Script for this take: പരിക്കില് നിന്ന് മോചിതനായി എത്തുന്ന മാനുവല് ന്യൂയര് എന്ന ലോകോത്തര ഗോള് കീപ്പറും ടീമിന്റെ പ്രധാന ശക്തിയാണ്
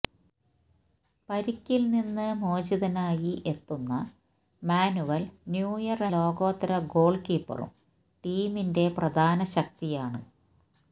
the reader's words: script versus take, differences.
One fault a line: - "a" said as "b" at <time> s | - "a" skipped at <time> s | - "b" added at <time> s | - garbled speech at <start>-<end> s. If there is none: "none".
- "എന്ന" skipped at 6.1 s